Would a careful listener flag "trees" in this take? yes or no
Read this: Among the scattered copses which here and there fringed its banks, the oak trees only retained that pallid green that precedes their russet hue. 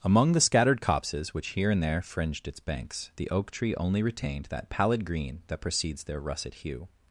yes